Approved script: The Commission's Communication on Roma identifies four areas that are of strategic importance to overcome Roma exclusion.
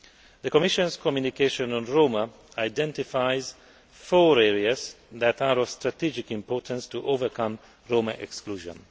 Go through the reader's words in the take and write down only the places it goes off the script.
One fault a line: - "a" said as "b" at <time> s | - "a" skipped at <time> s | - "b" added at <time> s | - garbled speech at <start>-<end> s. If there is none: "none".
none